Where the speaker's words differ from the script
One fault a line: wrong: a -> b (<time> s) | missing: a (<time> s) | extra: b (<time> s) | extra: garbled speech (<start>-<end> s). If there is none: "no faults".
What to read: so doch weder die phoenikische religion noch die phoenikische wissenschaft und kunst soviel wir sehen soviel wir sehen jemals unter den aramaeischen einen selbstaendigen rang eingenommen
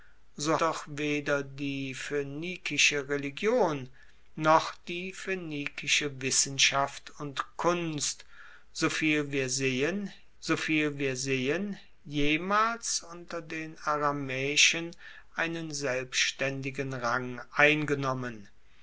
no faults